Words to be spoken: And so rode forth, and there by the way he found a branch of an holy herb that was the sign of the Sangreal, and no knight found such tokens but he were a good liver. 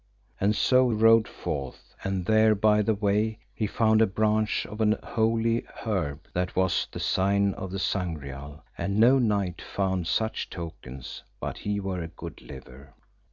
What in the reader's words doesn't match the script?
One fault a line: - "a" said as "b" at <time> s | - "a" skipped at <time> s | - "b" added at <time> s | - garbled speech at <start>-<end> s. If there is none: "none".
none